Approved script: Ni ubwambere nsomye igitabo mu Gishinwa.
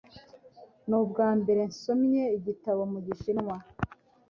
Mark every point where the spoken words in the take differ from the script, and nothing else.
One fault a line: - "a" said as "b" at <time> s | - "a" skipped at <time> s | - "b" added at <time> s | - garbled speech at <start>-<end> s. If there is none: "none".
none